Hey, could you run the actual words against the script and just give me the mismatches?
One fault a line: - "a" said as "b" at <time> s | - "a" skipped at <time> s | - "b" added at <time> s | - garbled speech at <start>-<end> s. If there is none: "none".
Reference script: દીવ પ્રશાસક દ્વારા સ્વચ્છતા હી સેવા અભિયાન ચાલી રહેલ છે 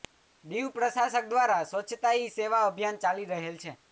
none